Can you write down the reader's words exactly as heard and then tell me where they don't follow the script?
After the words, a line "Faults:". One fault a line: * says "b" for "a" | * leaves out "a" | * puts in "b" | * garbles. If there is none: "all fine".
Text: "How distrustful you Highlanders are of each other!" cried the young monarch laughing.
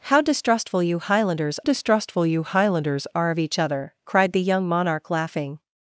"How distrustful you Highlanders distrustful you Highlanders are of each other!" cried the young monarch laughing.
Faults:
* puts in "distrustful you Highlanders"